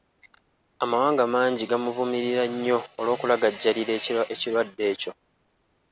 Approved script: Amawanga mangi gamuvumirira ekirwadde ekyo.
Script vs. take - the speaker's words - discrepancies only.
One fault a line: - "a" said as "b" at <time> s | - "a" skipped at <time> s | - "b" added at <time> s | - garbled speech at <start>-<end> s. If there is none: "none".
- "nnyo olw'okulagajjalira" added at 2.5 s